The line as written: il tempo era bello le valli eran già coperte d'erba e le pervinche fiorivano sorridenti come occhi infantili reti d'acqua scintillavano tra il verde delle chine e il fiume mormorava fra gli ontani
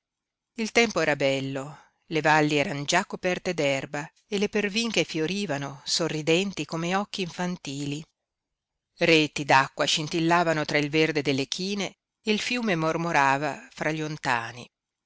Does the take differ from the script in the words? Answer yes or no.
no